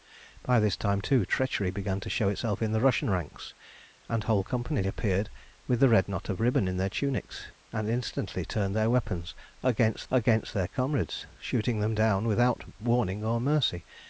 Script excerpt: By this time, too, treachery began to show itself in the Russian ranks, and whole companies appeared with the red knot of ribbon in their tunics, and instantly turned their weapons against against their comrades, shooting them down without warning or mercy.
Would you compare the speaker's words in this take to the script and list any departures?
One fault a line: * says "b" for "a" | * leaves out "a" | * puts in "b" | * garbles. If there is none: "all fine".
all fine